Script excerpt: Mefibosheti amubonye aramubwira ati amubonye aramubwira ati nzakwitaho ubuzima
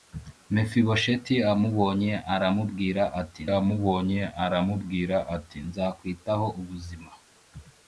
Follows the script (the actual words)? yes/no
yes